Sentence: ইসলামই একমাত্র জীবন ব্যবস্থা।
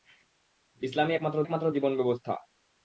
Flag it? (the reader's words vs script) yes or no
yes